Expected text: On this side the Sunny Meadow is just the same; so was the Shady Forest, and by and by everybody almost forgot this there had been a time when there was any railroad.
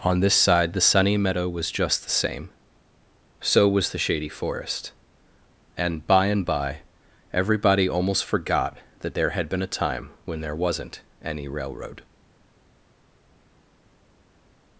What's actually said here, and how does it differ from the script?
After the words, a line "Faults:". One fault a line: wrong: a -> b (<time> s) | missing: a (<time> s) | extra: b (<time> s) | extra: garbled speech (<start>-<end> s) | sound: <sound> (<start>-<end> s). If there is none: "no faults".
On this side the Sunny Meadow was just the same; so was the Shady Forest, and by and by everybody almost forgot that there had been a time when there wasn't any railroad.
Faults:
wrong: is -> was (1.5 s)
wrong: this -> that (9.0 s)
wrong: was -> wasn't (10.6 s)